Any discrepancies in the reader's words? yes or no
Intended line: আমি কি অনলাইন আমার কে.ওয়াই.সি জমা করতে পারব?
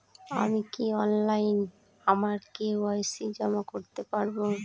no